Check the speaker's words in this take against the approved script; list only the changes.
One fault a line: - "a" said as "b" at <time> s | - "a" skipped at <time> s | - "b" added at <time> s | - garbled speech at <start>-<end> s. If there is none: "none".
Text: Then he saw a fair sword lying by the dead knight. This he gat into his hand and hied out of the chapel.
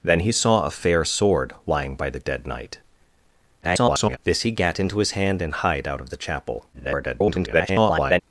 - garbled speech at 3.6-4.2 s
- garbled speech at 6.7-8.2 s